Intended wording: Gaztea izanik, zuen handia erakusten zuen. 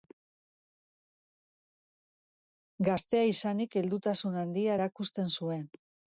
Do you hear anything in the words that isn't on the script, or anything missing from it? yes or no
yes